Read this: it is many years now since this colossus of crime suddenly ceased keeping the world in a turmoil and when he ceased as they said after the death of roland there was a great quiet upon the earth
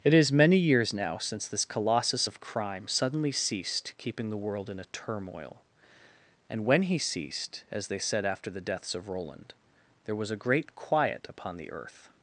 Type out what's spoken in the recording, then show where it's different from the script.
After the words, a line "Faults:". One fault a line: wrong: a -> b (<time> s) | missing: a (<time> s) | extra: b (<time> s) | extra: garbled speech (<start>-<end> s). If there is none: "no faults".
it is many years now since this colossus of crime suddenly ceased keeping the world in a turmoil and when he ceased as they said after the deaths of roland there was a great quiet upon the earth
Faults:
wrong: death -> deaths (8.6 s)